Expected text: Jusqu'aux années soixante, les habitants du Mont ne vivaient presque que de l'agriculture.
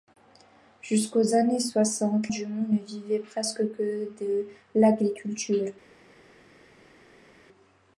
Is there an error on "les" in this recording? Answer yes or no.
yes